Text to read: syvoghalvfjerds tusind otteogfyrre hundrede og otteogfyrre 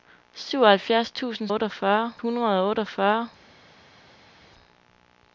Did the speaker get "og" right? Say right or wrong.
right